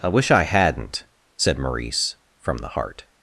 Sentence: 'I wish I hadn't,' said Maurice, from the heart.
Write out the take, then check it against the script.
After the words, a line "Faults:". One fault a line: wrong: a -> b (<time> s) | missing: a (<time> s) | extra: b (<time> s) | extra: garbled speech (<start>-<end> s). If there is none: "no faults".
'I wish I hadn't,' said Maurice, from the heart.
Faults:
no faults